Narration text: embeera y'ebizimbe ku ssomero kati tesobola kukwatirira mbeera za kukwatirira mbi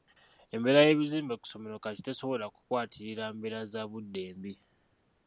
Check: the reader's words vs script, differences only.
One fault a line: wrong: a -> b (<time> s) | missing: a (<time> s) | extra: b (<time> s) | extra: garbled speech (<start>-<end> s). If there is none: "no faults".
wrong: kukwatirira -> budde (3.9 s)